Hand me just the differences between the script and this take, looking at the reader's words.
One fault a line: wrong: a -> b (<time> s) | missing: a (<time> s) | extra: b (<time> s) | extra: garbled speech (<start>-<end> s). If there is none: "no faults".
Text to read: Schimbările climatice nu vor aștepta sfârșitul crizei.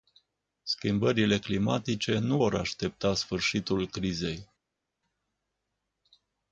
no faults